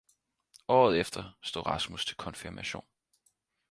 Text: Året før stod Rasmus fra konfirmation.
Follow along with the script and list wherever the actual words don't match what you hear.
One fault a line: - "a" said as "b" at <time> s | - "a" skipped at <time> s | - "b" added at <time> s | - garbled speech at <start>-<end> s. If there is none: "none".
- "før" said as "efter" at 1.0 s
- "fra" said as "til" at 2.0 s